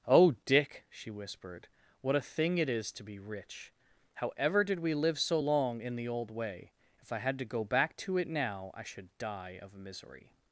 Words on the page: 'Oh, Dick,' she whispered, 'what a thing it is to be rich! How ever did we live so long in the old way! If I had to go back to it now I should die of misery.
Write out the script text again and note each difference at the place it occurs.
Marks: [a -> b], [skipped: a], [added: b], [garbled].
'Oh, Dick,' she whispered, 'what a thing it is to be rich! How ever did we live so long in the old way! If I had to go back to it now I should die of misery.